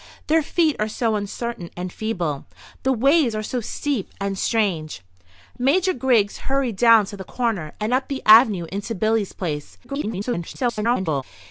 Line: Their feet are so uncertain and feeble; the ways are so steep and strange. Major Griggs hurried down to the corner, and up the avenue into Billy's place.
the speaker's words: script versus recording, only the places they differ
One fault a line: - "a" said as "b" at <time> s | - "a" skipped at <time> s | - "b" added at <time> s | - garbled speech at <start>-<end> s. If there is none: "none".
- garbled speech at 9.8-11.2 s